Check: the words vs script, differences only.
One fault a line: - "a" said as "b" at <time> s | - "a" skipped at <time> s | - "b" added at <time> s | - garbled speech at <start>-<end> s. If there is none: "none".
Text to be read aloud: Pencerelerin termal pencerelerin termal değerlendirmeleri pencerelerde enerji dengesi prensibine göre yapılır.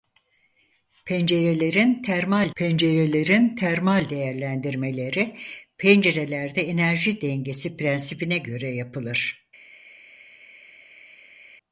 none